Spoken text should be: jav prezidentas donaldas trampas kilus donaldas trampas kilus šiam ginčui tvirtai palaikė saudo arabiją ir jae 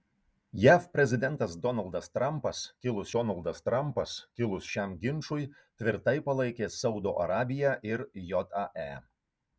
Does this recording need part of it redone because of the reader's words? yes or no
no